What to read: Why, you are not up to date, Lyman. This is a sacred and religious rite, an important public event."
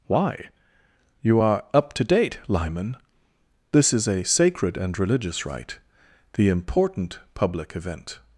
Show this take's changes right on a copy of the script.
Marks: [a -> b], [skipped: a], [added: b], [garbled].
Why, you are [skipped: not] up to date, Lyman. This is a sacred and religious rite, [an -> the] important public event."